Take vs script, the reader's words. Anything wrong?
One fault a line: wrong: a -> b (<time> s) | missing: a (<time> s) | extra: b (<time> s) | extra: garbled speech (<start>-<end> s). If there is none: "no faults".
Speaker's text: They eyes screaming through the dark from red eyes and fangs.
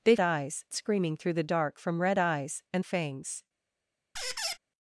no faults